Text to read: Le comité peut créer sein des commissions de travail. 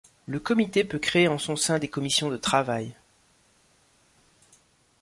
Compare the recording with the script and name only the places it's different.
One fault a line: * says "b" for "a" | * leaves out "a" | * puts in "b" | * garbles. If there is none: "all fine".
* puts in "en son"